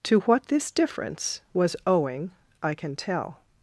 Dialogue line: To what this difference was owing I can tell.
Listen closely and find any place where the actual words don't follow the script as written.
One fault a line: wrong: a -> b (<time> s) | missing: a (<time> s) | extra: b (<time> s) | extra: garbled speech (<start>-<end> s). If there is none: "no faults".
no faults